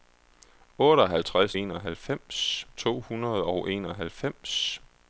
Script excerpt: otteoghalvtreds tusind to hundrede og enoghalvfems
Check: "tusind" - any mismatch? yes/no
yes